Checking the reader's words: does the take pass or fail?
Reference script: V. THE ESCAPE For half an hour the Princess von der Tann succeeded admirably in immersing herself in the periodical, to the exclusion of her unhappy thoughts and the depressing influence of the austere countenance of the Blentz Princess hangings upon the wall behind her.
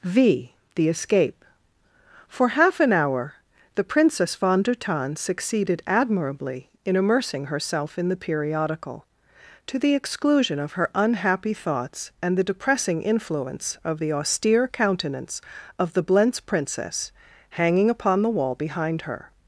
fail